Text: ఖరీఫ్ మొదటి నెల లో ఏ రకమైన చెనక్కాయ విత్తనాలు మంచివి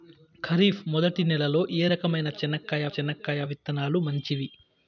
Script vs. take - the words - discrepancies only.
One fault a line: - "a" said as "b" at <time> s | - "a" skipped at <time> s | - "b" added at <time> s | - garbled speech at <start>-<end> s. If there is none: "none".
- "చెనక్కాయ" added at 2.9 s